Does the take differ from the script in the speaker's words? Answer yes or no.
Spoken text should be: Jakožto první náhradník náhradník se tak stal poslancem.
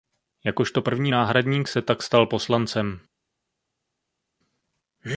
yes